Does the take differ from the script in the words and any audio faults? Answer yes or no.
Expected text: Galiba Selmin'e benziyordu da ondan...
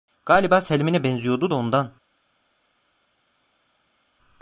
no